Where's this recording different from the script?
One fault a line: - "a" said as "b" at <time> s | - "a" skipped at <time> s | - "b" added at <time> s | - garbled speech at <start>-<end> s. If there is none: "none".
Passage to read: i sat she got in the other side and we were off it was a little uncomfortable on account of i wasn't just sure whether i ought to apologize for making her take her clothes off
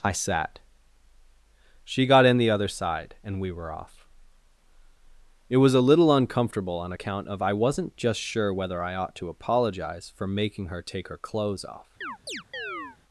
none